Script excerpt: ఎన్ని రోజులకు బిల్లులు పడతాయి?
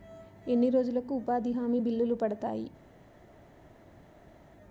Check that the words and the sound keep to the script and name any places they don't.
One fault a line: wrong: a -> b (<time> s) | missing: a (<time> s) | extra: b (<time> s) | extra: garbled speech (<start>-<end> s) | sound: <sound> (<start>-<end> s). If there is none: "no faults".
extra: ఉపాధి హామీ (1.1 s)